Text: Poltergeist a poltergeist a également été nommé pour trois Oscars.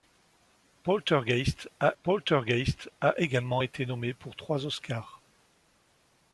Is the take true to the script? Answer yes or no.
yes